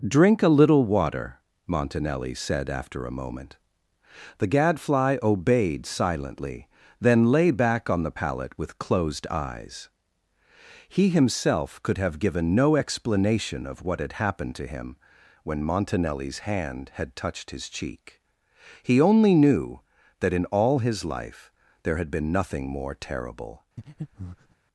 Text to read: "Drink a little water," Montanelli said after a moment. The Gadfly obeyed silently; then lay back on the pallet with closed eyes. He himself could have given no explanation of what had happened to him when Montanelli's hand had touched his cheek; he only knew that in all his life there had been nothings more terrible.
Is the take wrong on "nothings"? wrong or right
wrong